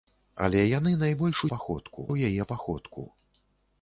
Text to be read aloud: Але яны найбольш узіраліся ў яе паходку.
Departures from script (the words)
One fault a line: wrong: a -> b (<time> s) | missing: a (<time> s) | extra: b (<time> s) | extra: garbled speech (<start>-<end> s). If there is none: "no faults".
wrong: узіраліся -> паходку (1.5 s)